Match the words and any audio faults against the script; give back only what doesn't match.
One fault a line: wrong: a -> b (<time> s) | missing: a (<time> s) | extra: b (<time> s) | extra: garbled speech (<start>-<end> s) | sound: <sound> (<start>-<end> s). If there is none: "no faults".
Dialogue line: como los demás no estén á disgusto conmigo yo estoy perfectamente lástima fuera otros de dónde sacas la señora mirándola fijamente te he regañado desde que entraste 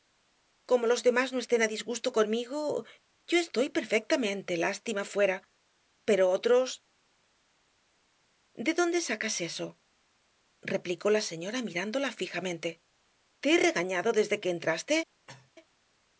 extra: pero (6.1 s)
extra: eso replicó (9.5 s)
sound: cough (15.3-15.5 s)